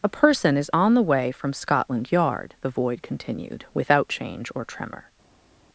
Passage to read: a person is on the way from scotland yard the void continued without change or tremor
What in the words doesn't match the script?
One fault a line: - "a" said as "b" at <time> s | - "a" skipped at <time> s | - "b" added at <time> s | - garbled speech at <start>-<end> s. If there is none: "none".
none